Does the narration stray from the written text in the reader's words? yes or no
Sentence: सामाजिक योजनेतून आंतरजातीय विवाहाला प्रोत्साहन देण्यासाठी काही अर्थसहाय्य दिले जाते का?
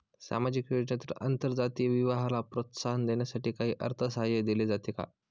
no